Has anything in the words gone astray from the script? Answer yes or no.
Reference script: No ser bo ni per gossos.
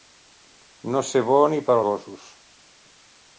no